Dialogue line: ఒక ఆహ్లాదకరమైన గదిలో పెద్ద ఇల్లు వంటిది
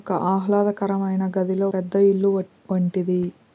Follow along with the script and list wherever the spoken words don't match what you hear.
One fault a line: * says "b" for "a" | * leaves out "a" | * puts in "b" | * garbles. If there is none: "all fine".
all fine